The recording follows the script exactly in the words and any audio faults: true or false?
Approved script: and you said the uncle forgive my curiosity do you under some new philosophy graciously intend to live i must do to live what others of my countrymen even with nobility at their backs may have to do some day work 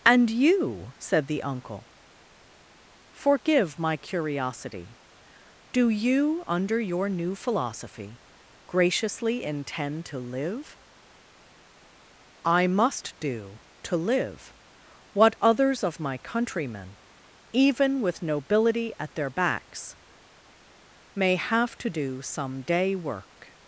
false